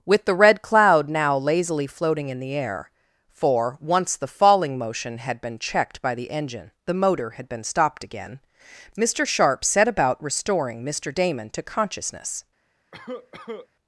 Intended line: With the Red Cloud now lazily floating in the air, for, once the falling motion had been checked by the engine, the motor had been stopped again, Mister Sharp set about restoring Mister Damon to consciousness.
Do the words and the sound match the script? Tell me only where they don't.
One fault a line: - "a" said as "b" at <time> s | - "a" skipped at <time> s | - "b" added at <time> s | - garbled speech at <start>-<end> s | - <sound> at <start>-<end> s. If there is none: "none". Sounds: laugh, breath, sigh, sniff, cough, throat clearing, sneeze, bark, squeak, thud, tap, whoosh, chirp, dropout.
- cough at 12.9-13.7 s